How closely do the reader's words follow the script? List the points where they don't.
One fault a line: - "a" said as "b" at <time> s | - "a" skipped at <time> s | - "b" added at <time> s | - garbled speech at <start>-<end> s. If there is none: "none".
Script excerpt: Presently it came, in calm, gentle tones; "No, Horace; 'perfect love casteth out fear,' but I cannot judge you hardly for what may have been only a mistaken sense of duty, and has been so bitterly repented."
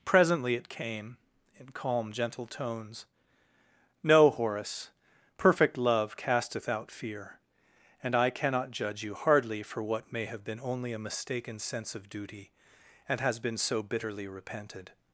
- "but" said as "and" at 8.0 s